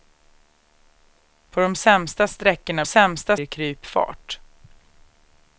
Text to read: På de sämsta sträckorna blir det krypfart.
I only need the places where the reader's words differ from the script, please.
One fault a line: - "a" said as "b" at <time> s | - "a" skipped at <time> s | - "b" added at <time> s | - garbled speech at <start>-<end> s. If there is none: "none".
- "blir" said as "sämsta" at 2.8 s